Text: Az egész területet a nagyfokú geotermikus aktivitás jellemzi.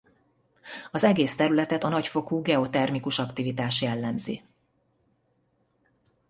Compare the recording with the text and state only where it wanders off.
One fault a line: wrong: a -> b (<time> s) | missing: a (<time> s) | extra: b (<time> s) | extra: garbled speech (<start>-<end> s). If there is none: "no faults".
no faults